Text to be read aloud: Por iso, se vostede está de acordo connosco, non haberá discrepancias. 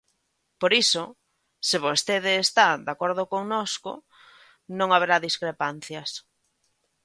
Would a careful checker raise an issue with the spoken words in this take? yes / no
no